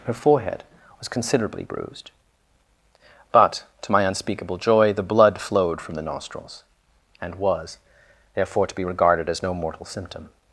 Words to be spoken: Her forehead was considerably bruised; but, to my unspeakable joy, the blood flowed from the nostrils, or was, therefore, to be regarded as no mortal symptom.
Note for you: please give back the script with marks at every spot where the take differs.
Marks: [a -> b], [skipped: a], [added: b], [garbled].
Her forehead was considerably bruised; but, to my unspeakable joy, the blood flowed from the nostrils, [or -> and] was, therefore, to be regarded as no mortal symptom.